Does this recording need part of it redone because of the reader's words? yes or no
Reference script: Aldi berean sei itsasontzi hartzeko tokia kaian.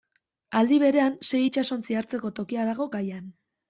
yes